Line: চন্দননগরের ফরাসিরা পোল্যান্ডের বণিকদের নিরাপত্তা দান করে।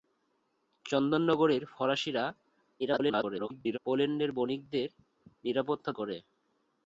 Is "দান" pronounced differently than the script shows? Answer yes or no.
yes